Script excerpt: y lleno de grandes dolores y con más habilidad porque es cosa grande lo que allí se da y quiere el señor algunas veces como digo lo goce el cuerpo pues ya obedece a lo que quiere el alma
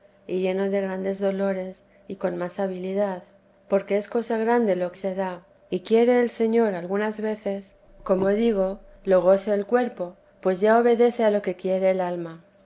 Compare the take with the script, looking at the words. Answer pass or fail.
fail